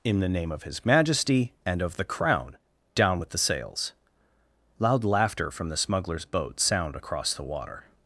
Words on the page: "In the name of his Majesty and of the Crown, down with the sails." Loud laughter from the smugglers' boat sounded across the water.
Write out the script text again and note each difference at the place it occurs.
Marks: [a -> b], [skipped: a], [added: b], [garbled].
"In the name of his Majesty and of the Crown, down with the sails." Loud laughter from the smugglers' boat [sounded -> sound] across the water.